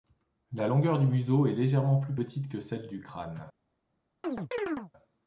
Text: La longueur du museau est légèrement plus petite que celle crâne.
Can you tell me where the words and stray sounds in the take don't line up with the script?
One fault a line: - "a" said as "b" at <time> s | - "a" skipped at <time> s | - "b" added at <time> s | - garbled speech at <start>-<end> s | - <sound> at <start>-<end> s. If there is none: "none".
- "du" added at 2.9 s
- chirp at 4.2-4.9 s